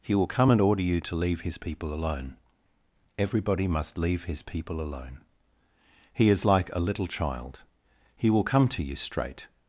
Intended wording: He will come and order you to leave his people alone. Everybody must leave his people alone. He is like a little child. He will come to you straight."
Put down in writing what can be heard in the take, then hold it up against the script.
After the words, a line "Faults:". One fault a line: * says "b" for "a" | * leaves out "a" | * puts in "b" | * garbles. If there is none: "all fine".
He will come and order you to leave his people alone. Everybody must leave his people alone. He is like a little child. He will come to you straight."
Faults:
all fine